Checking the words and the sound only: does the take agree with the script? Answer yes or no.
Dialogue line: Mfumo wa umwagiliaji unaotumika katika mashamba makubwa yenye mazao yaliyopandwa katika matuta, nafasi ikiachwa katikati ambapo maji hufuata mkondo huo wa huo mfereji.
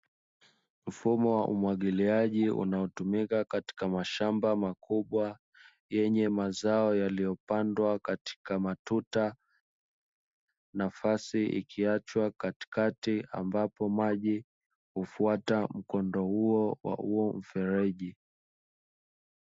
yes